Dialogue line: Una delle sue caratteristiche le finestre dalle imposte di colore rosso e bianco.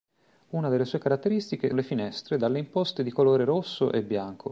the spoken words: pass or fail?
pass